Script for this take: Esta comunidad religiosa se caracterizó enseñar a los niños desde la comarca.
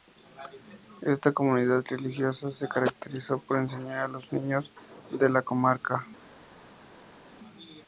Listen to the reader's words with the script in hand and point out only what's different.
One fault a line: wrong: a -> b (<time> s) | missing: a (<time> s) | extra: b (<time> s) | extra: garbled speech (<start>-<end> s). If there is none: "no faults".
extra: por (3.4 s)
wrong: desde -> de (5.1 s)